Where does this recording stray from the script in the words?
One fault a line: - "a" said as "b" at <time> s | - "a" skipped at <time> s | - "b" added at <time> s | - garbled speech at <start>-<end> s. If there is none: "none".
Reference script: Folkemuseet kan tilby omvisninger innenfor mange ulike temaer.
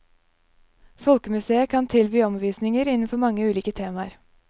none